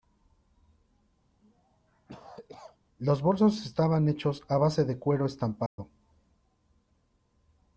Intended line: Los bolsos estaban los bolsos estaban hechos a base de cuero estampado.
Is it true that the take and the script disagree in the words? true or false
true